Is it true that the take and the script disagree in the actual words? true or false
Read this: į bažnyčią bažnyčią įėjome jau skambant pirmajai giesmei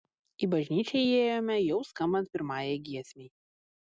true